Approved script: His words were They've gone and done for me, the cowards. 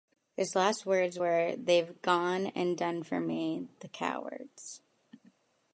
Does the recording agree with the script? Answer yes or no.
no